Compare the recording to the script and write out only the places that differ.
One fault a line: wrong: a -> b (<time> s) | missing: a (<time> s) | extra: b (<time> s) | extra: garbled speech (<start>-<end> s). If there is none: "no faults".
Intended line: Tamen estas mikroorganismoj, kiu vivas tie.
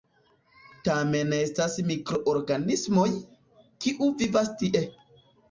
no faults